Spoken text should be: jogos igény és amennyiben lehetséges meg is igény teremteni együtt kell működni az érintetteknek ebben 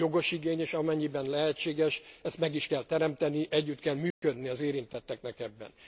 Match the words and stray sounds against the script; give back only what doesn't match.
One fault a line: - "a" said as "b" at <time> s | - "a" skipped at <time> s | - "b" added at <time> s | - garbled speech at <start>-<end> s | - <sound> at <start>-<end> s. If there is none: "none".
- "ezt" added at 2.2 s
- "igény" said as "kell" at 2.7 s
- dropout at 4.1-4.2 s